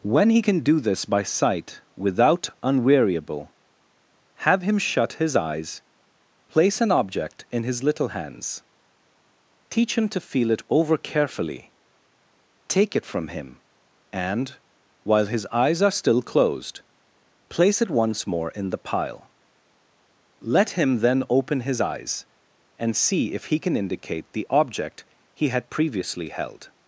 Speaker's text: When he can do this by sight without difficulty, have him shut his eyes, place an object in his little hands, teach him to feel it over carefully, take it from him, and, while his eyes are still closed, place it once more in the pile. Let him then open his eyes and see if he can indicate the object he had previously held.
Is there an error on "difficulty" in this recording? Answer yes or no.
yes